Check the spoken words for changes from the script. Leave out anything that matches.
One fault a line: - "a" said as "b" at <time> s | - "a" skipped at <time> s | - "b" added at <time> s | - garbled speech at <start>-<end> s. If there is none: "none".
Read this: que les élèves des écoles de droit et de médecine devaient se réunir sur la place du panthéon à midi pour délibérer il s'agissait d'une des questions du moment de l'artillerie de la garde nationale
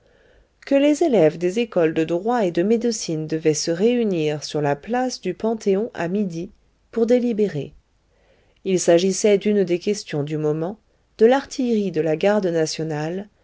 none